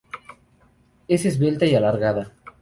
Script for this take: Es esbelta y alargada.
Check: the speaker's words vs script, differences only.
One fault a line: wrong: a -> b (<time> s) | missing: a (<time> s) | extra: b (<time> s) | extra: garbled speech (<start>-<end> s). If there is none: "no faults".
no faults